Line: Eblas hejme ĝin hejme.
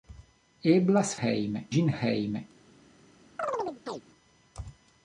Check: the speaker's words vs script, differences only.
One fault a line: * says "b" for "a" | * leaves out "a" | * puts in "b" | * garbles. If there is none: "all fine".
all fine